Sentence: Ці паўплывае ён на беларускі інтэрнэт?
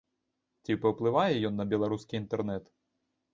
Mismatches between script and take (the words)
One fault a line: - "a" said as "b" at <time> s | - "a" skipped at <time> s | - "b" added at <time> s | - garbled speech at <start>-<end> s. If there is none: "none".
none